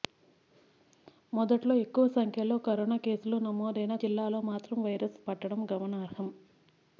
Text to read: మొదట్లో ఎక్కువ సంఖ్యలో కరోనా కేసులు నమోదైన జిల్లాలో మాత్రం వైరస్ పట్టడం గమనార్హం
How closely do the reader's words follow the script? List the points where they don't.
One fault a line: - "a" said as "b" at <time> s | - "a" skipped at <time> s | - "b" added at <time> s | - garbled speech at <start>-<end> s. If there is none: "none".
none